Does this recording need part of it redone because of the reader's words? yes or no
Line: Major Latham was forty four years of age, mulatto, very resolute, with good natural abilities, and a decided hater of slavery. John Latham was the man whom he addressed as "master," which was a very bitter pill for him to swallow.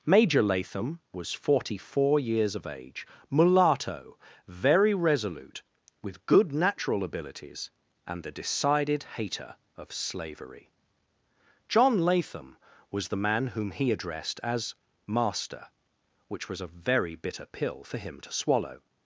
yes